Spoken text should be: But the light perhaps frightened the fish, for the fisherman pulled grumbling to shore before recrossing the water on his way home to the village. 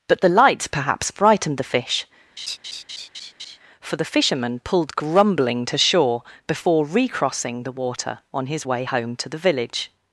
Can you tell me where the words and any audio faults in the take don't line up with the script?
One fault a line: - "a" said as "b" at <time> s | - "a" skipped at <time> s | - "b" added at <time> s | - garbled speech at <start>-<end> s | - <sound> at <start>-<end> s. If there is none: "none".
- laugh at 2.4-3.6 s